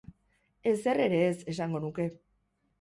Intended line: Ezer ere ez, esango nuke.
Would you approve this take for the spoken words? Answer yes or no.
yes